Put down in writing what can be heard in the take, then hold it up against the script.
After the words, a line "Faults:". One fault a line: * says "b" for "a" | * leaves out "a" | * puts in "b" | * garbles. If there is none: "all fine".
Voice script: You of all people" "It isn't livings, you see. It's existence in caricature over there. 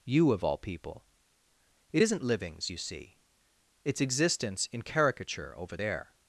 You of all people" "It isn't livings, you see. It's existence in caricature over there.
Faults:
all fine